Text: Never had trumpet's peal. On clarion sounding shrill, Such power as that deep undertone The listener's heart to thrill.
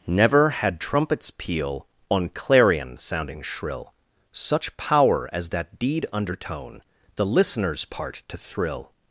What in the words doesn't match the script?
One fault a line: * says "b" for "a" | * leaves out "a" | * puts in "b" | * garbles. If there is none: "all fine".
* says "deed" for "deep"
* says "part" for "heart"